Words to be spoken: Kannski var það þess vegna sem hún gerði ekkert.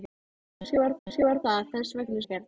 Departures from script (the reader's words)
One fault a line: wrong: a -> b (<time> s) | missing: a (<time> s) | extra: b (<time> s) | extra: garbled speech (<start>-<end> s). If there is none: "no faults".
extra: kannski var (1.1 s)
missing: sem hún gerði (2.2 s)